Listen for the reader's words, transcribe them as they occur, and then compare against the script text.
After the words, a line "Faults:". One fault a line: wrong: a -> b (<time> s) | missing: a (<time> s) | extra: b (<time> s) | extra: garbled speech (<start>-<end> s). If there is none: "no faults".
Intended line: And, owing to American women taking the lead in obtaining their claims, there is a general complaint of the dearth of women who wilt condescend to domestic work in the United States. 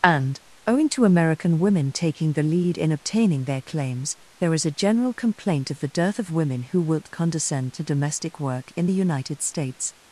And, owing to American women taking the lead in obtaining their claims, there is a general complaint of the dearth of women who wilt condescend to domestic work in the United States.
Faults:
no faults